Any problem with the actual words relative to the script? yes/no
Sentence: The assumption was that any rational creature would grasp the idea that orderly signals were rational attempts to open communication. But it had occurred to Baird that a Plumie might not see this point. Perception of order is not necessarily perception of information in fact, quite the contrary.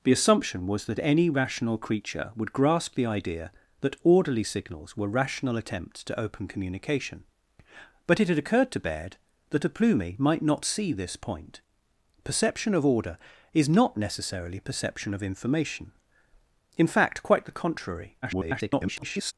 yes